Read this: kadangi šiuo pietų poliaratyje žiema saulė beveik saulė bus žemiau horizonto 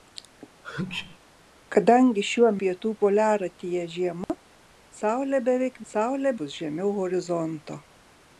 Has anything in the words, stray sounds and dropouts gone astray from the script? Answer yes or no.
yes